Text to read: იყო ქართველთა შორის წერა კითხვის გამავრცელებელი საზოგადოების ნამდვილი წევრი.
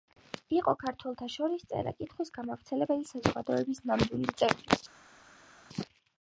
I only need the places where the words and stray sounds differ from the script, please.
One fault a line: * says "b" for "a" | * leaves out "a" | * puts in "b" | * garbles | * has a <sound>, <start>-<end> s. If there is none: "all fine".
all fine